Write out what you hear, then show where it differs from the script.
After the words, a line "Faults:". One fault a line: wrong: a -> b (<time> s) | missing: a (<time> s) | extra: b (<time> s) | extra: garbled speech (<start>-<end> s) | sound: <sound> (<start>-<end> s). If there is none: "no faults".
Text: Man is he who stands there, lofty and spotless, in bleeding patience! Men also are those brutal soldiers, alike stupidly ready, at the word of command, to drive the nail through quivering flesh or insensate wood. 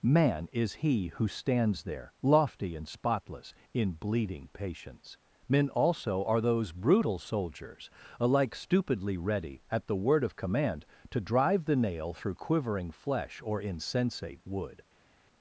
Man is he who stands there, lofty and spotless, in bleeding patience! Men also are those brutal soldiers, alike stupidly ready, at the word of command, to drive the nail through quivering flesh or insensate wood.
Faults:
no faults